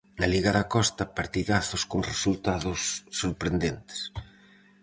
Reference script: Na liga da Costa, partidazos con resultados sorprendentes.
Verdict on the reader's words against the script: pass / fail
pass